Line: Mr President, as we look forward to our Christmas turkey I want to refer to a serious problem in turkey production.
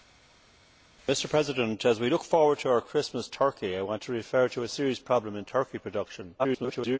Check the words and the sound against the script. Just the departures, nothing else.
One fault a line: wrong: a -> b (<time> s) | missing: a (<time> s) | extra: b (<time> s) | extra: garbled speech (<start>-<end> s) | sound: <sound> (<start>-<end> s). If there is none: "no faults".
extra: garbled speech (6.4-7.0 s)